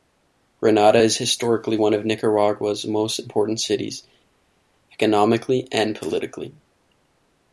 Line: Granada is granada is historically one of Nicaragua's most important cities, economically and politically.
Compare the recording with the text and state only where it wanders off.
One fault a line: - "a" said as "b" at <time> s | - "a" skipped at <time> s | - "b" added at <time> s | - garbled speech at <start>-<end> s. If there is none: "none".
- "granada is" skipped at 1.2 s